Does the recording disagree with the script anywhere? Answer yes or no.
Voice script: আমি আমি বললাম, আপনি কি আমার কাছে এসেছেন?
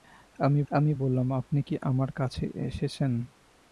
no